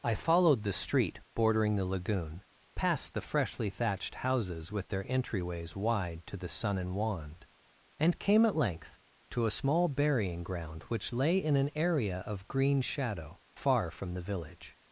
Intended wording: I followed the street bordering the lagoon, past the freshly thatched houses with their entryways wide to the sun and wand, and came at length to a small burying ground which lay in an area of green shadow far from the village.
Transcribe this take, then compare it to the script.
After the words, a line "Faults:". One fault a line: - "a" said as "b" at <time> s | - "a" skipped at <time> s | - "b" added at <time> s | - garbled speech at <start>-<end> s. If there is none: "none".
I followed the street bordering the lagoon, past the freshly thatched houses with their entryways wide to the sun and wand, and came at length to a small burying ground which lay in an area of green shadow far from the village.
Faults:
none